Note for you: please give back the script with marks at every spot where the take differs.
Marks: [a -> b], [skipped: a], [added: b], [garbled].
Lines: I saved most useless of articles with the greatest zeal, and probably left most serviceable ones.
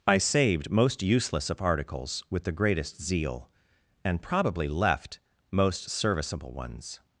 I saved most useless of articles with the greatest zeal, and probably left most serviceable ones.